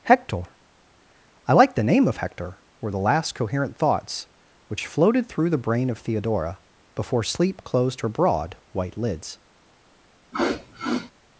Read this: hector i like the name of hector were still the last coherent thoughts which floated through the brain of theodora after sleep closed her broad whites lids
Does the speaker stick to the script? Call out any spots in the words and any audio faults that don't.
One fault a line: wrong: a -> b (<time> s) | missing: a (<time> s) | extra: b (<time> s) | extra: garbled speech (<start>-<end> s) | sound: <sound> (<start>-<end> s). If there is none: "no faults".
missing: still (2.9 s)
wrong: after -> before (7.0 s)
wrong: whites -> white (8.7 s)
sound: sniff (10.3-11.1 s)